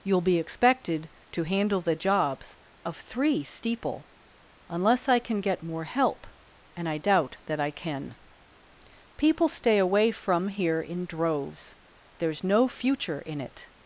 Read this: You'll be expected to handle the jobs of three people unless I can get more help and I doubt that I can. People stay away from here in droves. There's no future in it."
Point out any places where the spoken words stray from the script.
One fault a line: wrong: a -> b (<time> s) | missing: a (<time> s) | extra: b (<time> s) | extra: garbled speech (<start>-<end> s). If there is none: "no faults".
wrong: people -> steeple (3.4 s)